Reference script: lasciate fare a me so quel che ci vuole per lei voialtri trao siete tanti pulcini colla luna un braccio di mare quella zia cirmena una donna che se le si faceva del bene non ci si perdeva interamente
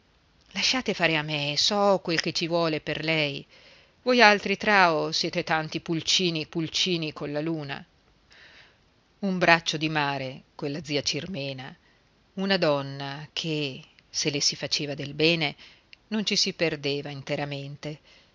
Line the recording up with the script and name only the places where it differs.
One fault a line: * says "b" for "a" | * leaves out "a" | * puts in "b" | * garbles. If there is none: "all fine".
* puts in "pulcini"